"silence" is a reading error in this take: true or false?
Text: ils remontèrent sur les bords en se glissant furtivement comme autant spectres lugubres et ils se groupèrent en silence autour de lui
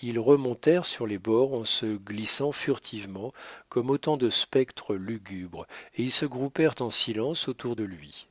false